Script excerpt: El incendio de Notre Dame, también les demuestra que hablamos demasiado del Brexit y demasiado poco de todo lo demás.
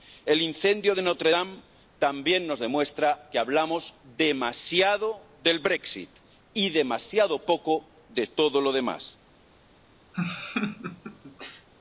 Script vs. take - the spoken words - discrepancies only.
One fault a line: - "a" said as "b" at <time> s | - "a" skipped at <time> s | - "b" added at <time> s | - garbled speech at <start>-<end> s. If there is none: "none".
- "les" said as "nos" at 2.5 s